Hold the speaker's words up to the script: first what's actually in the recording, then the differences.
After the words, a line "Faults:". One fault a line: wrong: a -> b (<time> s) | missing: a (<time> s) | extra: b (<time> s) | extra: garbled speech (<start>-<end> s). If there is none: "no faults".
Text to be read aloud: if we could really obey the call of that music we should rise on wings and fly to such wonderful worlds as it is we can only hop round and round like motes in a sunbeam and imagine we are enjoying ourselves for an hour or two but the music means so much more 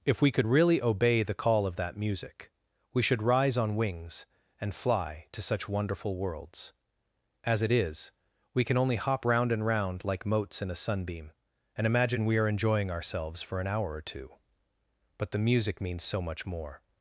if we could really obey the call of that music we should rise on wings and fly to such wonderful worlds as it is we can only hop round and round like motes in a sunbeam and imagine we are enjoying ourselves for an hour or two but the music means so much more
Faults:
no faults